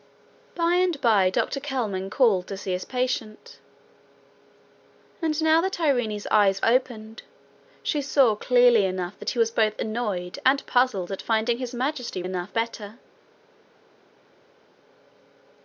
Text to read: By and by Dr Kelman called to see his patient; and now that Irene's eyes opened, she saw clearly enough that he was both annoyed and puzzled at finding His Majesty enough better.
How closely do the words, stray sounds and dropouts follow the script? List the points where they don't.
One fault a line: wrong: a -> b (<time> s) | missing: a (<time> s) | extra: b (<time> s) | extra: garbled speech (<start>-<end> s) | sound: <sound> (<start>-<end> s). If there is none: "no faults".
no faults